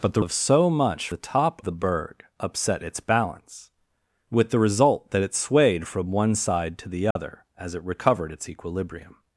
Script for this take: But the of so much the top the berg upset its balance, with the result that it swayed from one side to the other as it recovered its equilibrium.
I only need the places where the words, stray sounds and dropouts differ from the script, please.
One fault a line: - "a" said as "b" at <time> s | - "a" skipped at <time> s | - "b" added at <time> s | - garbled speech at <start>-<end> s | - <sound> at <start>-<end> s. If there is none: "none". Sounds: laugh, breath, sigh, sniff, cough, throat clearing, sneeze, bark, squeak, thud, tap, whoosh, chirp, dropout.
- dropout at 7.1-7.2 s